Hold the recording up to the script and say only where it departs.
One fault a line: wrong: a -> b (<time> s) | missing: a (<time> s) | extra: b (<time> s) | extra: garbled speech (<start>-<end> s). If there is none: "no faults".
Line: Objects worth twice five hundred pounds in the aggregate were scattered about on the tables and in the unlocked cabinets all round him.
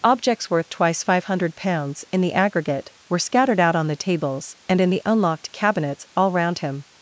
wrong: about -> out (3.6 s)